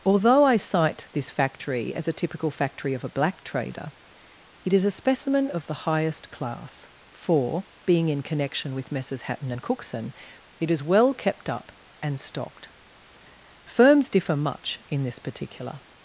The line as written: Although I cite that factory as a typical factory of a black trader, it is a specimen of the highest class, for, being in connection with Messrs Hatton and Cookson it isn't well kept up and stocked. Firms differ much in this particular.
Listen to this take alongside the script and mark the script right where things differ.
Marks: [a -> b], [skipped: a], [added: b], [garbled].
Although I cite [that -> this] factory as a typical factory of a black trader, it is a specimen of the highest class, for, being in connection with Messrs Hatton and Cookson it [isn't -> is] well kept up and stocked. Firms differ much in this particular.